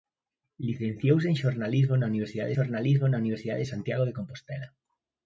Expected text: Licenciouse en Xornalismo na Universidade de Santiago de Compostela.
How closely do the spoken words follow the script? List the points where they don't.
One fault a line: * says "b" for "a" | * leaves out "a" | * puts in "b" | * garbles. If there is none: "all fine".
* puts in "Xornalismo na Universidade"